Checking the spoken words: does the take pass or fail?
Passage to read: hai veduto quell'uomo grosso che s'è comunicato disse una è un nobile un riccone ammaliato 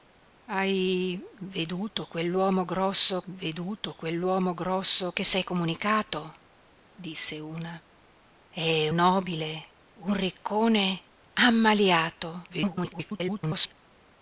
fail